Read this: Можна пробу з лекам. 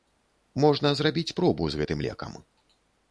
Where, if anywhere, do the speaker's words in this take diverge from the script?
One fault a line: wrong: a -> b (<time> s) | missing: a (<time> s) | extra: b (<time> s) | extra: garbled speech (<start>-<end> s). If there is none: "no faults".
extra: зрабіць (1.0 s)
extra: гэтым (1.8 s)